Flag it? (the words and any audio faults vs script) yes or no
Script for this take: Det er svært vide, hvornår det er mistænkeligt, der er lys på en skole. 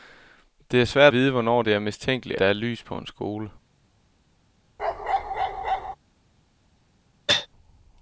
yes